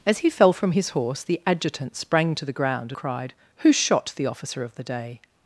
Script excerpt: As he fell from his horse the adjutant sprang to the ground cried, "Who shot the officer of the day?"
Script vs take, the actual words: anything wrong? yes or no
no